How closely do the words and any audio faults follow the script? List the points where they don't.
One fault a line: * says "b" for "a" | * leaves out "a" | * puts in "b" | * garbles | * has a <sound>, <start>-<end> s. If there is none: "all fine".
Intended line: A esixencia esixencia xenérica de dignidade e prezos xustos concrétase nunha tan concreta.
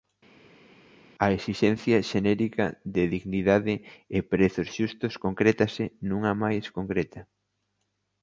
* leaves out "esixencia"
* says "máis" for "tan"